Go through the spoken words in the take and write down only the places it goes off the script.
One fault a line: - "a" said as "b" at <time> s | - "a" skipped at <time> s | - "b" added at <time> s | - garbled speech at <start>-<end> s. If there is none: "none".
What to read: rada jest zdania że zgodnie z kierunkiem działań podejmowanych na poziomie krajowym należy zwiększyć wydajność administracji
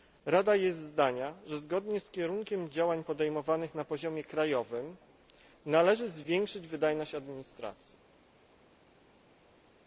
none